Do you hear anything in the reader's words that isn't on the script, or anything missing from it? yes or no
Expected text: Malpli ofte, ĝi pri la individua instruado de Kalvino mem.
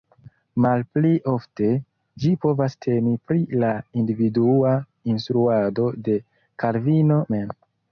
yes